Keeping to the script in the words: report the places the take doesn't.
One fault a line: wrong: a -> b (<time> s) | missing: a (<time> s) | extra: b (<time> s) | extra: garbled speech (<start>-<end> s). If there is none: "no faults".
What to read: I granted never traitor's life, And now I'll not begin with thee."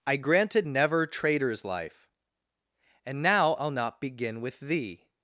no faults